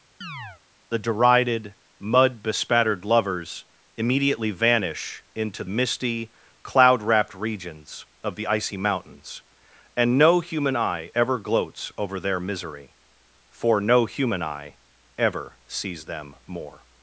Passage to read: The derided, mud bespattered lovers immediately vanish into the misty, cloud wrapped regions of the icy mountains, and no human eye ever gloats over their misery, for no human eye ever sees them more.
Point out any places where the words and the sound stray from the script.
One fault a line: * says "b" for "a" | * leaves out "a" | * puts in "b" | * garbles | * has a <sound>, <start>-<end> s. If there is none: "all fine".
* has a chirp, 0.2-0.6 s
* leaves out "the"